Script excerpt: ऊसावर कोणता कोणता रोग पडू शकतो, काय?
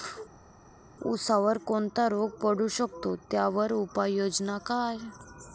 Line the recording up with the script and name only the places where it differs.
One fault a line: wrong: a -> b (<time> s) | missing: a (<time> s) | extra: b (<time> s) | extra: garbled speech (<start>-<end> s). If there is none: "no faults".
missing: कोणता (2.1 s)
extra: त्यावर उपाययोजना (3.3 s)